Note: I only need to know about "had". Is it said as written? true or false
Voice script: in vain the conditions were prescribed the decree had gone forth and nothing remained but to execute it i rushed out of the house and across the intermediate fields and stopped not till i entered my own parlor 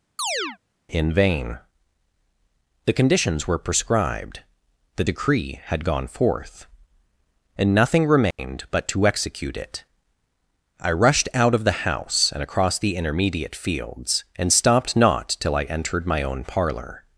true